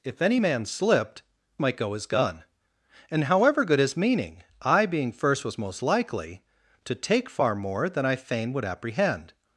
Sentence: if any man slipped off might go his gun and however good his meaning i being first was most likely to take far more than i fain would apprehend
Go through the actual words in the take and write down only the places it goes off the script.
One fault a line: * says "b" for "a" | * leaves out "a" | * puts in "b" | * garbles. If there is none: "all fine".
* leaves out "off"